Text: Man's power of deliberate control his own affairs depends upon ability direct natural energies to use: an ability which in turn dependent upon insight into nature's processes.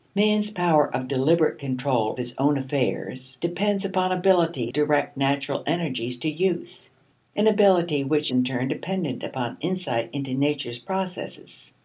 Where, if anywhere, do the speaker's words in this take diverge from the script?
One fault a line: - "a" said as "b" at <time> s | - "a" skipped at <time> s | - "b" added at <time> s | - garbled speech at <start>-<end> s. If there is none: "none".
none